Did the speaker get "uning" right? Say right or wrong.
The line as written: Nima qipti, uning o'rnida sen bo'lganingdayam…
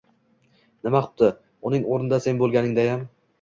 right